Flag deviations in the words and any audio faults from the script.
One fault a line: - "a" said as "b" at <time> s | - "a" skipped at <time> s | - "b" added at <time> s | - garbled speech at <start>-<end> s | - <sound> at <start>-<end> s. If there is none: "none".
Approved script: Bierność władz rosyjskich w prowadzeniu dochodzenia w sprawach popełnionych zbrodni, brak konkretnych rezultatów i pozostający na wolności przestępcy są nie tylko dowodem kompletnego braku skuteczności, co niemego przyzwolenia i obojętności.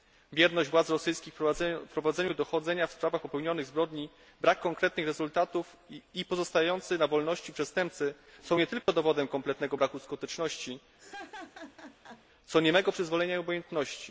- dropout at 8.8-8.9 s
- laugh at 11.0-12.2 s